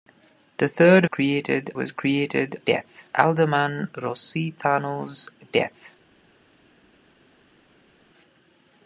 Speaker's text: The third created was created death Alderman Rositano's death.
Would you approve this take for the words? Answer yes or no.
yes